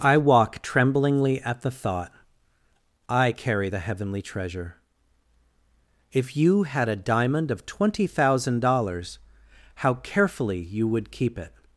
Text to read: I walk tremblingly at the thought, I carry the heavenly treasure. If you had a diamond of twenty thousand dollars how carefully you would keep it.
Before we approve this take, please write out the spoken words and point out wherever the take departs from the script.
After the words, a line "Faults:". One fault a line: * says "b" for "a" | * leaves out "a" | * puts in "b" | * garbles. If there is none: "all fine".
I walk tremblingly at the thought, I carry the heavenly treasure. If you had a diamond of twenty thousand dollars how carefully you would keep it.
Faults:
all fine